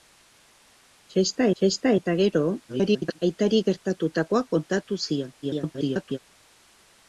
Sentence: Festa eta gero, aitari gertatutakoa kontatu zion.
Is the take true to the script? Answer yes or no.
no